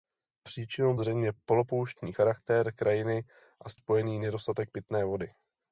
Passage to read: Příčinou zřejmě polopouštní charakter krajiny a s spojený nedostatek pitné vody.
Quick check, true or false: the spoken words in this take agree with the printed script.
true